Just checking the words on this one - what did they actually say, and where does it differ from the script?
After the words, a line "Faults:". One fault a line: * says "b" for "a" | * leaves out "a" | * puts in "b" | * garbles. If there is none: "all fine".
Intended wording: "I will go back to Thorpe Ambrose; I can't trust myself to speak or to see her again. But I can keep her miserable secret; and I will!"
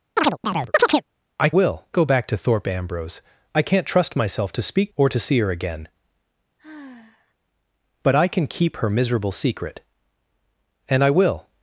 "I will go back to Thorpe Ambrose; I can't trust myself to speak or to see her again. But I can keep her miserable secret; and I will!"
Faults:
all fine